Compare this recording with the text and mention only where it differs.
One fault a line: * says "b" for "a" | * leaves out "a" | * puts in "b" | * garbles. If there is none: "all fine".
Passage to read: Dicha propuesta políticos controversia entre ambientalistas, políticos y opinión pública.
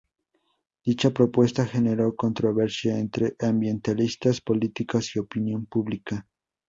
* says "generó" for "políticos"